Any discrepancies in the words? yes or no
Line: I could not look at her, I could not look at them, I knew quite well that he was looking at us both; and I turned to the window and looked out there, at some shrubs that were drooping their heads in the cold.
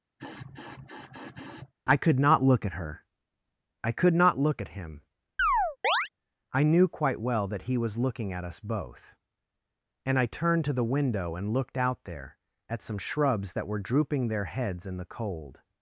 yes